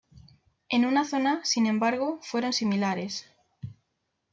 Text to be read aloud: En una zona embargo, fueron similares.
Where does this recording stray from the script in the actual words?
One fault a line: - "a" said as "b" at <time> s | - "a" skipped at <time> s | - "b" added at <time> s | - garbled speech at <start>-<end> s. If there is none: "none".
- "sin" added at 1.4 s